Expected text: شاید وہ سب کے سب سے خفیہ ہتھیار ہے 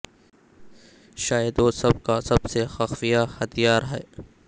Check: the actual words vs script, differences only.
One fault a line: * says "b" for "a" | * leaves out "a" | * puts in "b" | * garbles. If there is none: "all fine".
* says "کا" for "کے"